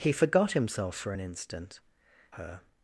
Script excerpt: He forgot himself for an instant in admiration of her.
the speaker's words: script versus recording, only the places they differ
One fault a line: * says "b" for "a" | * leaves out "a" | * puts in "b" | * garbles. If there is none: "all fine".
* leaves out "in admiration of"